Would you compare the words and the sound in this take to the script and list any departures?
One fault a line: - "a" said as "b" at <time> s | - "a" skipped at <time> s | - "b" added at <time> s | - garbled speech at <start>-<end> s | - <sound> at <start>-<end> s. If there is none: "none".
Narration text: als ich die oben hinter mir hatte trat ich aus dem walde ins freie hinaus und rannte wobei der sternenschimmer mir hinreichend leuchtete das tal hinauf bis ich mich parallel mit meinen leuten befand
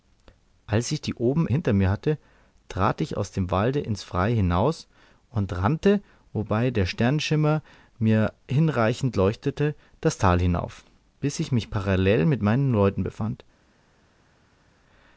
none